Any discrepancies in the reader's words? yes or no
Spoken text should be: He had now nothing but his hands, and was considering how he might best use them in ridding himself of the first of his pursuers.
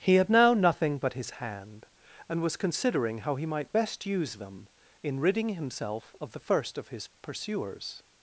yes